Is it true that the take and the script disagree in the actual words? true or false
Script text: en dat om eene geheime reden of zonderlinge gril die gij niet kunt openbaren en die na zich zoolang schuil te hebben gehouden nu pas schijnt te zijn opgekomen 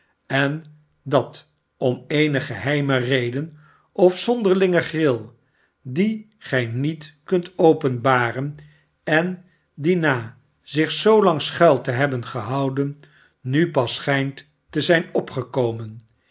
false